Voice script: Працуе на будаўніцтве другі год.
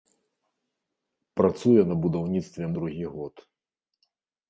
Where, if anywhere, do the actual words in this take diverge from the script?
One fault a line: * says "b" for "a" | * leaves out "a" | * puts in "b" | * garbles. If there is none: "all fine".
all fine